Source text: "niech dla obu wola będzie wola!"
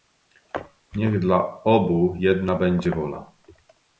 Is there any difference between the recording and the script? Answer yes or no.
yes